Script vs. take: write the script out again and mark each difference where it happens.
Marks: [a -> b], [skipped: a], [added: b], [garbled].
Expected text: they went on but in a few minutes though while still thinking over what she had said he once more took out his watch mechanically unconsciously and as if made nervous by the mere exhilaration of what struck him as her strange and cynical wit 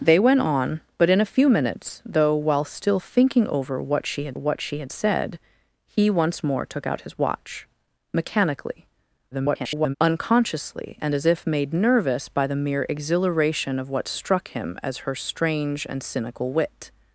they went on but in a few minutes though while still thinking over what she had [added: what she had] said he once more took out his watch mechanically [garbled] unconsciously and as if made nervous by the mere exhilaration of what struck him as her strange and cynical wit